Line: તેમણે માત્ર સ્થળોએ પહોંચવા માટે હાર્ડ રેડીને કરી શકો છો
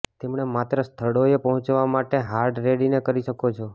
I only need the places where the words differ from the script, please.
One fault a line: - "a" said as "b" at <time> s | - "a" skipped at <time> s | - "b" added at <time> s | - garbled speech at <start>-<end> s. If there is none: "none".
none